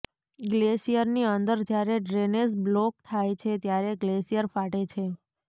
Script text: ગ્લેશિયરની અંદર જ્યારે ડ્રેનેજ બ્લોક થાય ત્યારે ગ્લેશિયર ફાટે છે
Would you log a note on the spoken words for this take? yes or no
yes